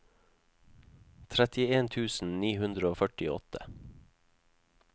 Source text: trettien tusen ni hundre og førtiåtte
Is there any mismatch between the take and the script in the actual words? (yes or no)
no